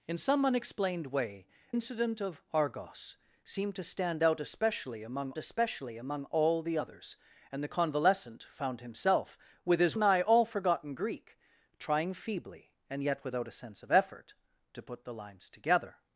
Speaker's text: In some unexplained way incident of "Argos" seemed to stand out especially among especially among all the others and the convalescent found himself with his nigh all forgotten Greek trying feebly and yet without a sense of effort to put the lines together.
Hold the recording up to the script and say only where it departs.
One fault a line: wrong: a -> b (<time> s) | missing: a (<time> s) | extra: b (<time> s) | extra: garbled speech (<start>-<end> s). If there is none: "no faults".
no faults